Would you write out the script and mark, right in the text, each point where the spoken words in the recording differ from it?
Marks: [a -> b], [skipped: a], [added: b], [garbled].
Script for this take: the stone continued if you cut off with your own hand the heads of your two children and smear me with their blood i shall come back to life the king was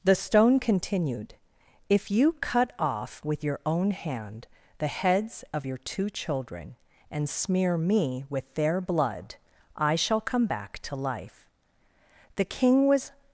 the stone continued if you cut off with your own hand the heads of your two children and smear me with their blood i shall come back to life the king was